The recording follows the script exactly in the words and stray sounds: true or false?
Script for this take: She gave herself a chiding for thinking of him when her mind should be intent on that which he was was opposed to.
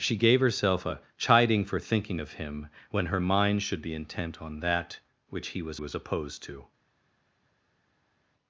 true